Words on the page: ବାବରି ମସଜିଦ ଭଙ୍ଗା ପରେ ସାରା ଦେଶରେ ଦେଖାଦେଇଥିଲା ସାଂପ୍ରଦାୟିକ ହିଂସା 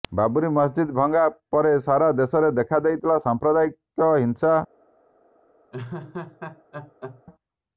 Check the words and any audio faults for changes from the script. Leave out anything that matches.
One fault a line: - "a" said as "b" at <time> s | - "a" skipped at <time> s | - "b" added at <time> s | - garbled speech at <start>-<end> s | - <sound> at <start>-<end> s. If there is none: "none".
- laugh at 5.7-7.2 s